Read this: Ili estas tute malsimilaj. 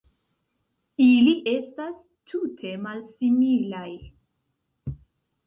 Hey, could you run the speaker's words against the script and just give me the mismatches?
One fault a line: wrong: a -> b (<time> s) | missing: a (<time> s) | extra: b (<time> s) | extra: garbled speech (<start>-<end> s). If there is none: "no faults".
no faults